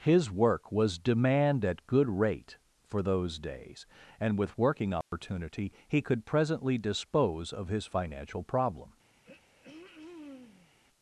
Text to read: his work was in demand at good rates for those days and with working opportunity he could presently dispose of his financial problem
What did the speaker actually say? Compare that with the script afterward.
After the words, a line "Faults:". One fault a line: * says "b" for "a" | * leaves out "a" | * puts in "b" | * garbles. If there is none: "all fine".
his work was demand at good rate for those days and with working opportunity he could presently dispose of his financial problem
Faults:
* leaves out "in"
* says "rate" for "rates"